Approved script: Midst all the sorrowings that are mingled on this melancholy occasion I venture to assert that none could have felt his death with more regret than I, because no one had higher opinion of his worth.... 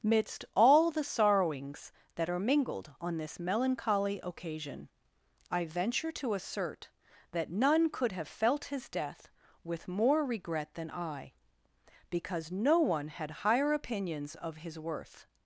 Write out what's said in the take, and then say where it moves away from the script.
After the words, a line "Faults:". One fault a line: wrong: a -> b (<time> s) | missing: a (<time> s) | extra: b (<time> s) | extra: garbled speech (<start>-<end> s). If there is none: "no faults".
Midst all the sorrowings that are mingled on this melancholy occasion I venture to assert that none could have felt his death with more regret than I, because no one had higher opinions of his worth....
Faults:
wrong: opinion -> opinions (13.7 s)